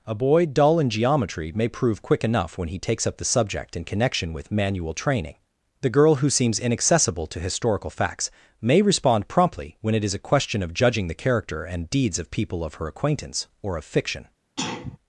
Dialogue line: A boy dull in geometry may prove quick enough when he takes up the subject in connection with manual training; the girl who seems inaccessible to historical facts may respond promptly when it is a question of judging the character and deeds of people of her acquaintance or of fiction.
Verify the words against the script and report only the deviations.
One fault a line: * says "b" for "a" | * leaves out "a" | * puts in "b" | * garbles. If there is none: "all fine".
all fine